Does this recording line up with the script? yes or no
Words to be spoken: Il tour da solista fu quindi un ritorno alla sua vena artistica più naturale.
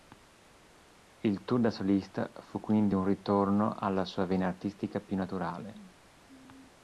yes